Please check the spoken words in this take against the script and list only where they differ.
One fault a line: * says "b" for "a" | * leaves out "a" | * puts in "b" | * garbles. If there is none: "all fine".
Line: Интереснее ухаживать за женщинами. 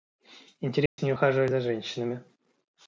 all fine